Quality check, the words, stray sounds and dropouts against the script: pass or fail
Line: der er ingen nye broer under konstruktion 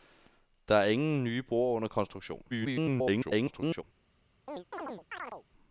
fail